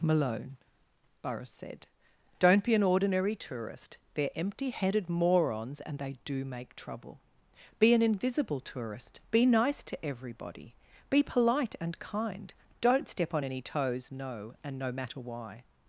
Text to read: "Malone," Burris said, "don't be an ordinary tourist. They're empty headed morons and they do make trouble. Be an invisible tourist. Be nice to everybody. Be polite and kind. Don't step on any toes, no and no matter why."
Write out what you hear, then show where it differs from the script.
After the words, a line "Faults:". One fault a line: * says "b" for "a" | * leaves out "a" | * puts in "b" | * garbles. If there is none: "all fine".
"Malone," Burris said, "don't be an ordinary tourist. They're empty headed morons and they do make trouble. Be an invisible tourist. Be nice to everybody. Be polite and kind. Don't step on any toes, no and no matter why."
Faults:
all fine